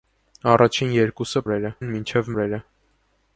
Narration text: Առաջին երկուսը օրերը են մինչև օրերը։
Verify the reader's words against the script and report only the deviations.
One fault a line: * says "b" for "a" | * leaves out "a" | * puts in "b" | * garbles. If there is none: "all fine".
all fine